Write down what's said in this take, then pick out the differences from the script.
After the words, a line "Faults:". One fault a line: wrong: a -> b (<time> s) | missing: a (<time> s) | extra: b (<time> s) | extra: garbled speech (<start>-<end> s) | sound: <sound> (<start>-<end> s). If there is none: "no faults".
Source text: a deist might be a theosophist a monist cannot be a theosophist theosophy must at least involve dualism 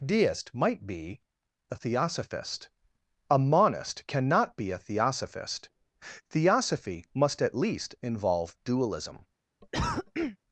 deist might be a theosophist a monist cannot be a theosophist theosophy must at least involve dualism
Faults:
missing: a (0.0 s)
sound: cough (9.6-10.4 s)